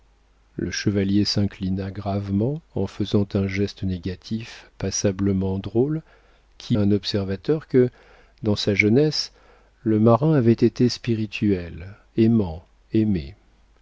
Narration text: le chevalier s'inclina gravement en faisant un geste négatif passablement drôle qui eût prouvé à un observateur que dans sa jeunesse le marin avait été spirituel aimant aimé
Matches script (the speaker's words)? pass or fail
fail